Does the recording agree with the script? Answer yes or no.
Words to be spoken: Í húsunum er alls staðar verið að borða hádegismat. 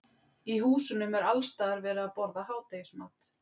yes